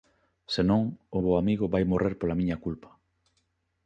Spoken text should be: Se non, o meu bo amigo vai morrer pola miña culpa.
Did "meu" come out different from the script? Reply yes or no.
yes